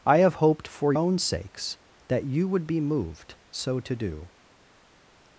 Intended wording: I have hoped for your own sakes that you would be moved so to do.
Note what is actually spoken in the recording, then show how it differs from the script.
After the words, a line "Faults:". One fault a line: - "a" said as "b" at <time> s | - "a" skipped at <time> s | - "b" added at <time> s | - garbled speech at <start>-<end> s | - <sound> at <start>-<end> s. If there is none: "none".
I have hoped for own sakes that you would be moved so to do.
Faults:
- "your" skipped at 0.9 s